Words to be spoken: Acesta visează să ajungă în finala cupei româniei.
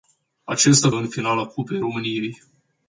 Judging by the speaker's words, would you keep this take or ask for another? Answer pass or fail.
fail